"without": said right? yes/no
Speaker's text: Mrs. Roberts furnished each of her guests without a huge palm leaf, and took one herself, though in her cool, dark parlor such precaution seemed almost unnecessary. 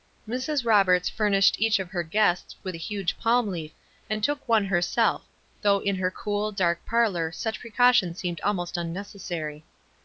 no